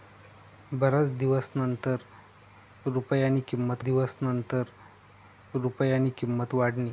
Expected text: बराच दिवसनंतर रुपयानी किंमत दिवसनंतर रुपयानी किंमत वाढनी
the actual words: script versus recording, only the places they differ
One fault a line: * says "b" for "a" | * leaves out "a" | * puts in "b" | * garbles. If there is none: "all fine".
all fine